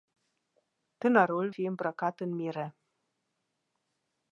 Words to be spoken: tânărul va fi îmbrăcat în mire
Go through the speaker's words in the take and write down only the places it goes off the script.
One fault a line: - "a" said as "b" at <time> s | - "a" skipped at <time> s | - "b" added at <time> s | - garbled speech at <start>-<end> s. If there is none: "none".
- "va" skipped at 1.5 s